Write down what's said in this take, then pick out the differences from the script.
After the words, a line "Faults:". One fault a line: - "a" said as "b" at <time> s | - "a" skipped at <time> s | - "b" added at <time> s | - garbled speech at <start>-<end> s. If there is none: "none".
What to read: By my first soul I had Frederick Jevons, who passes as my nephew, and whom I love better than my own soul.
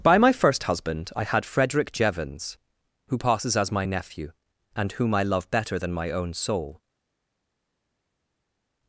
By my first husband I had Frederick Jevons, who passes as my nephew, and whom I love better than my own soul.
Faults:
- "soul" said as "husband" at 0.6 s